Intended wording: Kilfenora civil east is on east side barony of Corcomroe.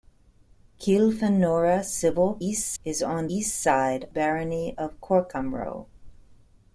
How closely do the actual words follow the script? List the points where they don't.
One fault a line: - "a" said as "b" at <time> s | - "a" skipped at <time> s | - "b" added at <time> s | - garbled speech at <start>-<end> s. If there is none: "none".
none